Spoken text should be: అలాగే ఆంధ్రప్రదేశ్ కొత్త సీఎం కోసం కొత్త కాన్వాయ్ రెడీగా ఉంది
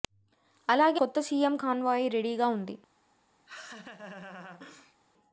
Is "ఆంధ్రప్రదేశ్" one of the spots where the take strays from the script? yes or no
yes